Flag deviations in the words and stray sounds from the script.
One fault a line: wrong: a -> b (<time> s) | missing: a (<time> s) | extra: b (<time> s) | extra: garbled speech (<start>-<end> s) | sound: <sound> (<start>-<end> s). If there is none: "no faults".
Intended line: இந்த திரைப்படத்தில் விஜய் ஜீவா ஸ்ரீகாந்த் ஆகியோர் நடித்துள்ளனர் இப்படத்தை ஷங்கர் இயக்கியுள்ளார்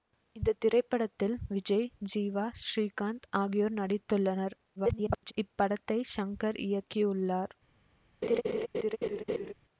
extra: garbled speech (4.8-5.3 s)
sound: laugh (8.2-9.5 s)